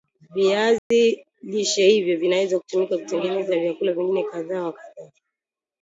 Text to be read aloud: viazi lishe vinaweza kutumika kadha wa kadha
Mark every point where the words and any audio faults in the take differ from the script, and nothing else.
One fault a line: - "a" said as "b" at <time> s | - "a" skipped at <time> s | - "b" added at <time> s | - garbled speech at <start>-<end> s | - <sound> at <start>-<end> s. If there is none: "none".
- dropout at 0.8-0.9 s
- "hivyo" added at 1.9 s
- "kutengeneza vyakula vingine" added at 3.0 s